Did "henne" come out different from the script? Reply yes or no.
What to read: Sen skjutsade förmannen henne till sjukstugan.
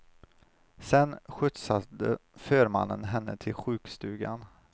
no